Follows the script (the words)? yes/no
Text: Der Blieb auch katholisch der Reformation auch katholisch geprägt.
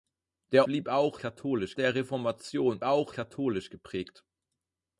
yes